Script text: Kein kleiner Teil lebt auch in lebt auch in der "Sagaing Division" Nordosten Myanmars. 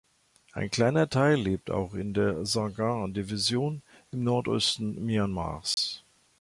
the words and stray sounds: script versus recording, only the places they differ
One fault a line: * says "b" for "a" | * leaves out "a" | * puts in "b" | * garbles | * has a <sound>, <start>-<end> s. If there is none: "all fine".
* says "Ein" for "Kein"
* leaves out "lebt auch in"
* puts in "im"
* has a dropout, 5.7-5.8 s